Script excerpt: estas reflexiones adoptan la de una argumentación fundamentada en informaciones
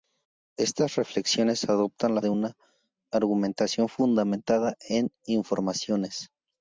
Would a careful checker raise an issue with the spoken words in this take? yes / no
no